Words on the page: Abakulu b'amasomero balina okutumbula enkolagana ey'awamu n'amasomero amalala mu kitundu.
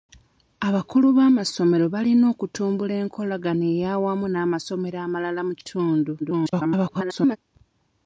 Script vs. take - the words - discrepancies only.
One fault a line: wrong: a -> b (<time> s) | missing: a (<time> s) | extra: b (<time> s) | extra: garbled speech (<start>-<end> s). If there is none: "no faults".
extra: garbled speech (6.2-7.4 s)